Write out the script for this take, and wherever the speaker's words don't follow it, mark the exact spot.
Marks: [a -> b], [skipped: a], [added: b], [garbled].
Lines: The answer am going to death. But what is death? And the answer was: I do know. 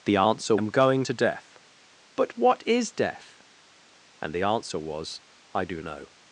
The answer am going to death. But what is death? And the answer was: I do know.